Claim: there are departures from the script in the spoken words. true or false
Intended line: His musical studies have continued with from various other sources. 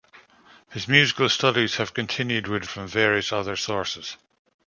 false